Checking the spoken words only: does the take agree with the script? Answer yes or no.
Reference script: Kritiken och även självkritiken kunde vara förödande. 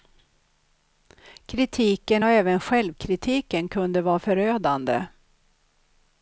yes